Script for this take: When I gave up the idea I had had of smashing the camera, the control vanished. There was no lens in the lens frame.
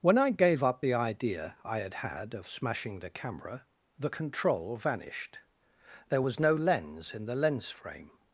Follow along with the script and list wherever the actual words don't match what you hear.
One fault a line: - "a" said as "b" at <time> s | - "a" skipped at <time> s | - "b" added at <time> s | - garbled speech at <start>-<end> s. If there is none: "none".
none